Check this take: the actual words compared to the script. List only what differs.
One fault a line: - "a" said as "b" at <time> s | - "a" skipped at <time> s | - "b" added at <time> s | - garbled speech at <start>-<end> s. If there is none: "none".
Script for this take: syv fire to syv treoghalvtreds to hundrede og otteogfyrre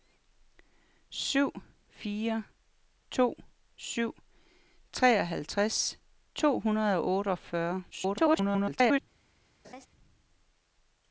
- garbled speech at 7.9-9.0 s